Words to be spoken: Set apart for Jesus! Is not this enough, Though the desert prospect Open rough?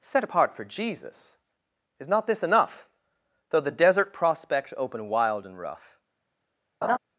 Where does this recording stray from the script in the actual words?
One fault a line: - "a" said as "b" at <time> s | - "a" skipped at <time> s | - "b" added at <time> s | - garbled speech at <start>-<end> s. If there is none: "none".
- "wild and" added at 5.1 s